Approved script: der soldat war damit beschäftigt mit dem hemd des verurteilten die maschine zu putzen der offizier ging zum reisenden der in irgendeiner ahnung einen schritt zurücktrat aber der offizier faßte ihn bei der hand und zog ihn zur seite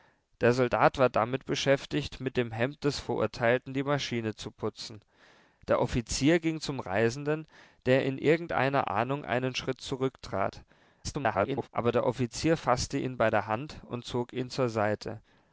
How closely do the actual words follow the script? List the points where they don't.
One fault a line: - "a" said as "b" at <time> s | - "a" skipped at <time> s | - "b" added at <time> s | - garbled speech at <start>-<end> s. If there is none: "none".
- garbled speech at 11.0-11.7 s